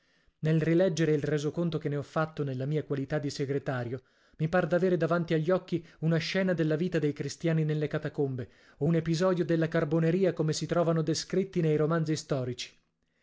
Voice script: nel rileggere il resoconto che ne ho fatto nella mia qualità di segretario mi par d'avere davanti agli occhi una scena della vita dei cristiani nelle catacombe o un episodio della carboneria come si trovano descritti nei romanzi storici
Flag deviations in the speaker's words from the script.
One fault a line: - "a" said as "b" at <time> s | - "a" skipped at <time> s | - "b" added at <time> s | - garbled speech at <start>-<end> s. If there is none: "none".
none